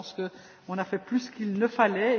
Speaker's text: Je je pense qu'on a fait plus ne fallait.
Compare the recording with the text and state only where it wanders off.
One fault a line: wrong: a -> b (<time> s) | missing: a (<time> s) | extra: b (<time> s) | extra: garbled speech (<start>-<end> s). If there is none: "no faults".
missing: je (0.1 s)
extra: qu'il (1.3 s)